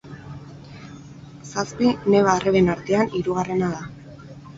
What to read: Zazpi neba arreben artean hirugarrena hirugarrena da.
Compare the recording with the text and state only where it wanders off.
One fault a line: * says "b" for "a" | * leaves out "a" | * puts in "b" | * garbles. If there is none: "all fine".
* leaves out "hirugarrena"